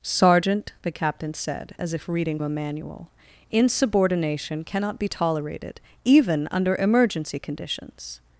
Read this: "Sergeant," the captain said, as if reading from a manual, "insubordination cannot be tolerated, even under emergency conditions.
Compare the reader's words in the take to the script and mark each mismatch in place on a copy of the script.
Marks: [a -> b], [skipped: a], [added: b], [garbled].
"Sergeant," the captain said, as if reading [skipped: from] a manual, "insubordination cannot be tolerated, even under emergency conditions.